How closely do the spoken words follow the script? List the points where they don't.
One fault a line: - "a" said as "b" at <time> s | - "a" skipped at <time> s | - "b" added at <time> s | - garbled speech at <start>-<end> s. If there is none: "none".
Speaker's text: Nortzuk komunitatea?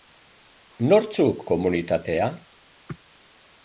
none